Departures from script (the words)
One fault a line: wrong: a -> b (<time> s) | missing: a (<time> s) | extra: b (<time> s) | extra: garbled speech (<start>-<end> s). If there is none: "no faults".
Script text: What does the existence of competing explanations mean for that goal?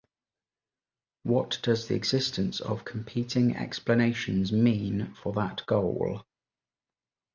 no faults